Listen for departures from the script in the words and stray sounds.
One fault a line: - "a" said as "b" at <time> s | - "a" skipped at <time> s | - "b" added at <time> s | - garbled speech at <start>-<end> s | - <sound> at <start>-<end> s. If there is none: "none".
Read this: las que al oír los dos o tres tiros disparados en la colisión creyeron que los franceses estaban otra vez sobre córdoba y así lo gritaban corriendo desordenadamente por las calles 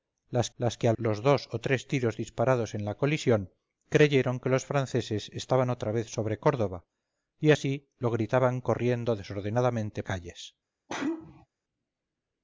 - "las" added at 0.6 s
- "oír" skipped at 1.0 s
- "por las" skipped at 10.0 s
- sneeze at 10.9-11.5 s